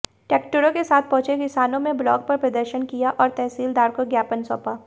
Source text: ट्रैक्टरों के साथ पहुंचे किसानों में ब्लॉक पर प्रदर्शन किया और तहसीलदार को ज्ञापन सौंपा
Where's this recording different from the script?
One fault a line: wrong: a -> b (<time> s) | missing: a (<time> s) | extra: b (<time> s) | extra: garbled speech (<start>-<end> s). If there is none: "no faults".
no faults